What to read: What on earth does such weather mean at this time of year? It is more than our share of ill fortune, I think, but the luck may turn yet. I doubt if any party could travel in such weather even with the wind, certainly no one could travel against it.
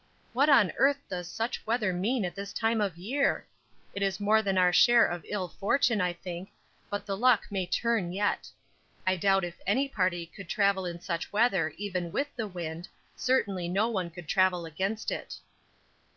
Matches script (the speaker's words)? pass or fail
pass